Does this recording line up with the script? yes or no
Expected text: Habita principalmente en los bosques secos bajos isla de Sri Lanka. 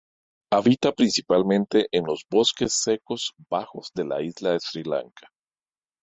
no